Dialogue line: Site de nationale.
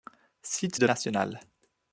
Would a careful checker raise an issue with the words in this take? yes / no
no